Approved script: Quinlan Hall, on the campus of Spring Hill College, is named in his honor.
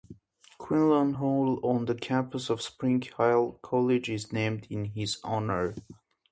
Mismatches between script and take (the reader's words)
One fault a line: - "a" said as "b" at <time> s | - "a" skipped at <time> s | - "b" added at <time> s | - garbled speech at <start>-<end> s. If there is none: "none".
none